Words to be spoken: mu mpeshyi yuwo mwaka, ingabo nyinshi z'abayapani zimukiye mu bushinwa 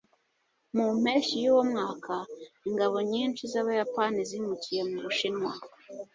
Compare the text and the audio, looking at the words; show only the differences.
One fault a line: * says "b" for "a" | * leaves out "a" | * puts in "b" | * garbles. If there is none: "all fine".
all fine